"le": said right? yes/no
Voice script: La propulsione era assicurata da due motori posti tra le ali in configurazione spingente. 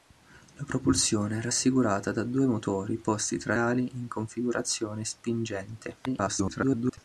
no